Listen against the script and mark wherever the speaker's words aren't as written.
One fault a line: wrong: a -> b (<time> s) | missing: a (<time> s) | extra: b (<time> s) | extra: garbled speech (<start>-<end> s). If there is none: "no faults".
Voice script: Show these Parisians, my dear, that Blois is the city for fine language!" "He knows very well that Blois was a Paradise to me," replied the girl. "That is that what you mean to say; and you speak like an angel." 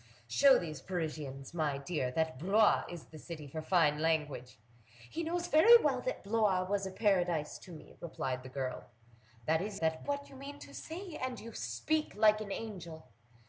no faults